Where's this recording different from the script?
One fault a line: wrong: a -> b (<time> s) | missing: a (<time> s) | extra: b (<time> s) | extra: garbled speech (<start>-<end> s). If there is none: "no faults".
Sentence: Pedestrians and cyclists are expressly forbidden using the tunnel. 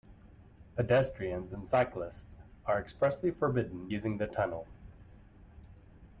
no faults